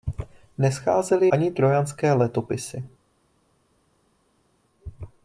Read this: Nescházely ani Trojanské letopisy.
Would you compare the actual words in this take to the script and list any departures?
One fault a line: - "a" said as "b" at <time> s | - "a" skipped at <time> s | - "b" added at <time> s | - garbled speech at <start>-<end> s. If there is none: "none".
none